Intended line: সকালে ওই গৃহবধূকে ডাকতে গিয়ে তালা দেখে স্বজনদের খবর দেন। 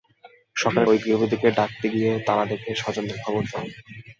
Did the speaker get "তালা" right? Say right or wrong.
right